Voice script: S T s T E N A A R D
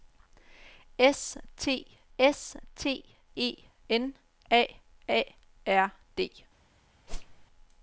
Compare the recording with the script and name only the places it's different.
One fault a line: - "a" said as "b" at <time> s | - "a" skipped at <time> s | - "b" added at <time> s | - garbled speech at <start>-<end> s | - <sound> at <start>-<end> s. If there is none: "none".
- whoosh at 7.1-7.5 s